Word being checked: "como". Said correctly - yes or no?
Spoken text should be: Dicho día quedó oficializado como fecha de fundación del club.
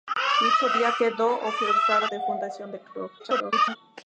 no